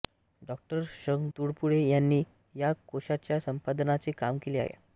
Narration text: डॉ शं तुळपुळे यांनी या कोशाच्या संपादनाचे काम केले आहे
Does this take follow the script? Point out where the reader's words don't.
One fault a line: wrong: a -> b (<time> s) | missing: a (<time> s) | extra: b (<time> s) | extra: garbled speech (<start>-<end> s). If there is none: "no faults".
no faults